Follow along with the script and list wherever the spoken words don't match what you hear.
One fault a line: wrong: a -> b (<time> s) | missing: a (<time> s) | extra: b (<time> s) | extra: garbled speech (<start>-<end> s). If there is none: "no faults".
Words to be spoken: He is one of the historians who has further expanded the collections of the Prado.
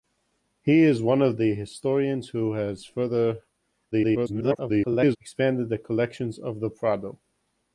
extra: garbled speech (3.9-5.2 s)